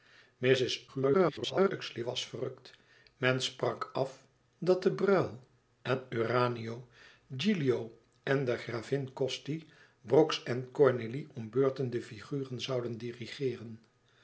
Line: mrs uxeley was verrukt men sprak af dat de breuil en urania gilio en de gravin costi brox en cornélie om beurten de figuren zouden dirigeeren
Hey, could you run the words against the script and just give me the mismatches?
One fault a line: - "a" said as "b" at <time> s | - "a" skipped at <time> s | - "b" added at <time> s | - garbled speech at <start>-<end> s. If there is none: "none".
- garbled speech at 0.9-1.7 s